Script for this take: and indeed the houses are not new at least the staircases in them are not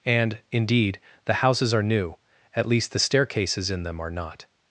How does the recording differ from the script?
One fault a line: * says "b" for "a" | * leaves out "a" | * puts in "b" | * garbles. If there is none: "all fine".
* leaves out "not"